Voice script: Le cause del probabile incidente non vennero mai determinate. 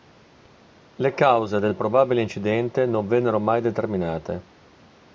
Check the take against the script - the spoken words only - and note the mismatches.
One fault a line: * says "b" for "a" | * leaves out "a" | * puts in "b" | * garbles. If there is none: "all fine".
all fine